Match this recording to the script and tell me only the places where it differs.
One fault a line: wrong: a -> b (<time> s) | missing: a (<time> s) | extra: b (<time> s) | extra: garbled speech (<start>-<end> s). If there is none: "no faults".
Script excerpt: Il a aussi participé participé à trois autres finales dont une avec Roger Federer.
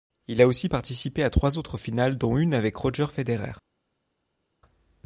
missing: participé (1.2 s)